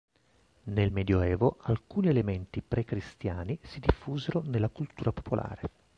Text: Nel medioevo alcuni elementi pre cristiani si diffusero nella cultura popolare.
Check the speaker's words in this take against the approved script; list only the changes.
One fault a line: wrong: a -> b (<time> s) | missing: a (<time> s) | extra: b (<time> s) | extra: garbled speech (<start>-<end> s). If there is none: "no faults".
no faults